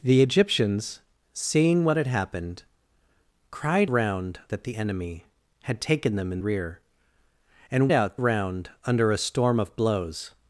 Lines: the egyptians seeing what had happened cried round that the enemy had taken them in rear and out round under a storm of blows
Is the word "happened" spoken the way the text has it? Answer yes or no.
yes